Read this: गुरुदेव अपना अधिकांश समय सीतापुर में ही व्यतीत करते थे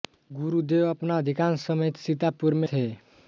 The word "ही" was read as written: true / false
false